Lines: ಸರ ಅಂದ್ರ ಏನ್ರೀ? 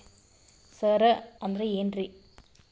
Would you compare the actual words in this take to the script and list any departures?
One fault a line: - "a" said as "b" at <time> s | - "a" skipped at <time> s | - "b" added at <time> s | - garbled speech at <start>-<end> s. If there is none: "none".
none